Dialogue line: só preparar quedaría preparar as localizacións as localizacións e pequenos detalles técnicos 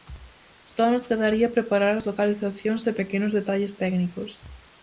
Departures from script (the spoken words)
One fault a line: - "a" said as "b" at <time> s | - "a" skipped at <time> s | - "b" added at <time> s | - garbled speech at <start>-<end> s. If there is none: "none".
- "preparar" said as "nos" at 0.9 s
- "as localizacións" skipped at 2.9 s